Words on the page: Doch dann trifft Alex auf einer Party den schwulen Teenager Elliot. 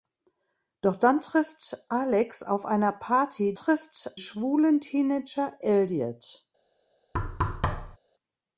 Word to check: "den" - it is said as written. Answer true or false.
false